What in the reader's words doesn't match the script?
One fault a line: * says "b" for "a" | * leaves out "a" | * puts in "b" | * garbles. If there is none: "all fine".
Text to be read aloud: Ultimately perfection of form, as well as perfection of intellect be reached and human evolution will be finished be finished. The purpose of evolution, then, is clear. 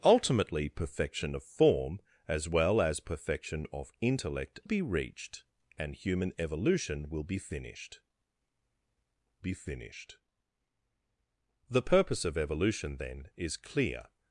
all fine